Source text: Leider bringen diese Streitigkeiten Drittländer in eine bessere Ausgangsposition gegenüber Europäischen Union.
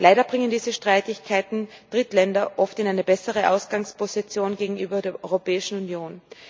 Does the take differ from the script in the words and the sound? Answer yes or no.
yes